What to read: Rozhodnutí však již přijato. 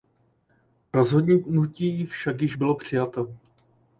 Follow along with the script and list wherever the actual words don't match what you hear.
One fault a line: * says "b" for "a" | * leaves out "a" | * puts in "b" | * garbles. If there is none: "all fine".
* puts in "bylo"